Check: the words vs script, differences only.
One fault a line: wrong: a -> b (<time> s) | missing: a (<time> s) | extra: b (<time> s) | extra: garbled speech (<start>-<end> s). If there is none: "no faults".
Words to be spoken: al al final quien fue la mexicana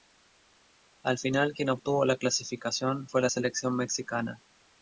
missing: al (1.2 s)
extra: obtuvo la clasificación (1.7 s)
extra: selección (3.3 s)